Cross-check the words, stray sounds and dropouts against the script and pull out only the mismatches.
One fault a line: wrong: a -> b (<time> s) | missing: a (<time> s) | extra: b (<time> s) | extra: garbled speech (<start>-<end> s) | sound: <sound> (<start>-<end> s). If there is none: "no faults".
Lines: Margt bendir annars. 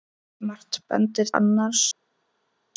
no faults